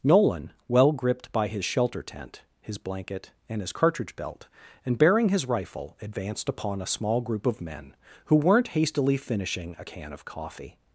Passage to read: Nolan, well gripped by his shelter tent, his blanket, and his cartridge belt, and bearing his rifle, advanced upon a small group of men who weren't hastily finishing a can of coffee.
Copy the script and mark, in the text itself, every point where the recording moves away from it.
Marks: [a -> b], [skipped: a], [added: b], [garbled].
Nolan, well gripped by his shelter tent, his blanket, and his cartridge belt, and bearing his rifle, advanced upon a small group of men who weren't hastily finishing a can of coffee.